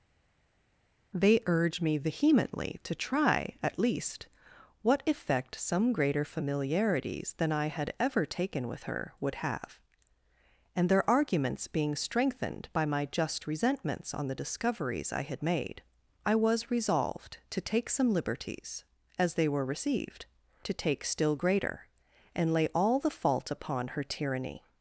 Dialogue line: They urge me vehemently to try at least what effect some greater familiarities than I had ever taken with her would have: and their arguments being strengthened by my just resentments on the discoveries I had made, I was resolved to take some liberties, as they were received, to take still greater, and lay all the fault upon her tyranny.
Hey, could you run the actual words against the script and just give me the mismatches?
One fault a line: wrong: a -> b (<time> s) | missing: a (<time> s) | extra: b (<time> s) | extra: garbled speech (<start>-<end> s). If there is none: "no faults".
no faults